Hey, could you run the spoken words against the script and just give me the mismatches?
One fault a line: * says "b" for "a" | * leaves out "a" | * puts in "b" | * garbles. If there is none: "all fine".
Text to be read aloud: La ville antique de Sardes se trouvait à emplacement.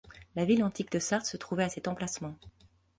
* puts in "cet"